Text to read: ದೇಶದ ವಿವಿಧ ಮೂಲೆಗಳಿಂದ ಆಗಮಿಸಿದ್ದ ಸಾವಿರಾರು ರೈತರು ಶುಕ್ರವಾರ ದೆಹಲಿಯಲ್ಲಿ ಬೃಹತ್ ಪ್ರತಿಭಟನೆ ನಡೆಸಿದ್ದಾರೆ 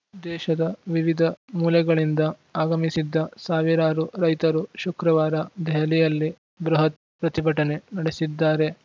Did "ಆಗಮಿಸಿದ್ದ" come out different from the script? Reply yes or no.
no